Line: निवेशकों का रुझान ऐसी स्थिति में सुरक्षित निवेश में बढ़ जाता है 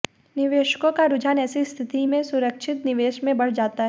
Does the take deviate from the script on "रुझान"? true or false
false